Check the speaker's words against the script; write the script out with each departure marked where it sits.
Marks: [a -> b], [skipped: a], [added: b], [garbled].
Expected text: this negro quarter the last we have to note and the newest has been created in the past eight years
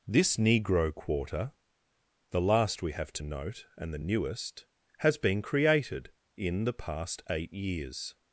this negro quarter the last we have to note and the newest has been created in the past eight years